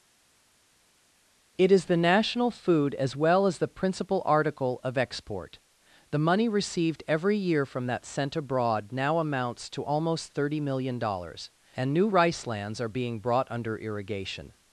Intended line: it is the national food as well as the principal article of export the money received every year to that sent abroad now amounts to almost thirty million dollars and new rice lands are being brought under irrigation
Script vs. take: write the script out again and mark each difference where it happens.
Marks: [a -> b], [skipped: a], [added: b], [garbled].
it is the national food as well as the principal article of export the money received every year [to -> from] that sent abroad now amounts to almost thirty million dollars and new rice lands are being brought under irrigation